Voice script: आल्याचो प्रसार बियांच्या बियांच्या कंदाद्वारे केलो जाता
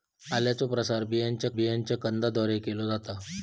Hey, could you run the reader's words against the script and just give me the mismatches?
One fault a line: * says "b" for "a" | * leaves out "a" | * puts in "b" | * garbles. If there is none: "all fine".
all fine